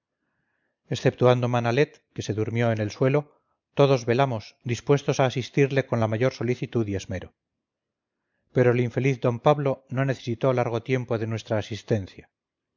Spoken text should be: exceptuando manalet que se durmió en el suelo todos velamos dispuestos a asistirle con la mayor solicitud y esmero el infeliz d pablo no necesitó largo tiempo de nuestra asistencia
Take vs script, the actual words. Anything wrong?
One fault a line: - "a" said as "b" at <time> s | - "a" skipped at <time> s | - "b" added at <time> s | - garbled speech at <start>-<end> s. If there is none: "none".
- "pero" added at 8.5 s